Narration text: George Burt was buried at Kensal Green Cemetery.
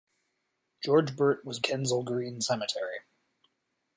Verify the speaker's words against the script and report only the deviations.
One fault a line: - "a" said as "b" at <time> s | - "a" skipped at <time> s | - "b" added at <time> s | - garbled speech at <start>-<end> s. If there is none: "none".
- "buried at" skipped at 1.6 s